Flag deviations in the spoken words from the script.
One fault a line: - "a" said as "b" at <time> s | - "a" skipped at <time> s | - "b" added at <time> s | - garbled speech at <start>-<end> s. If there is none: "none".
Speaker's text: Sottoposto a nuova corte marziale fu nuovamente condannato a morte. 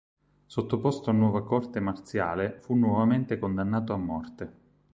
none